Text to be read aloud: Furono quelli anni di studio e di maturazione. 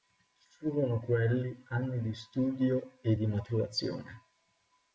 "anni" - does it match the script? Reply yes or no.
yes